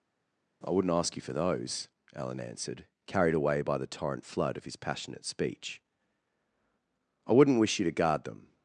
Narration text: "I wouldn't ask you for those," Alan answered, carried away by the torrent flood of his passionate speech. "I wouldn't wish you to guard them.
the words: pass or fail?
pass